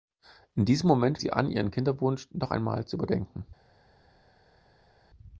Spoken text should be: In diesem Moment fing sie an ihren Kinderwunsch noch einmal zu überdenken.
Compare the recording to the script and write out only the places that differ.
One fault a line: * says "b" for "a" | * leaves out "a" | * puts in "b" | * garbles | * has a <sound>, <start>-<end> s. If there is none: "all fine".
* leaves out "fing"